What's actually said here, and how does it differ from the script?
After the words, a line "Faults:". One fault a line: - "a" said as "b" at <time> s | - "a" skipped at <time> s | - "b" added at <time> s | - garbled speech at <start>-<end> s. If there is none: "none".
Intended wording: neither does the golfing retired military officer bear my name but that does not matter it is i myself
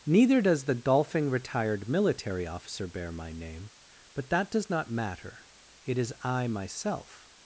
neither does the golfing retired military officer bear my name but that does not matter it is i myself
Faults:
none